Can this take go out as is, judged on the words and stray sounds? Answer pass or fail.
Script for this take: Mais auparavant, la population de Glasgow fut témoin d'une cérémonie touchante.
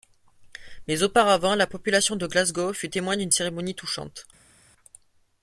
pass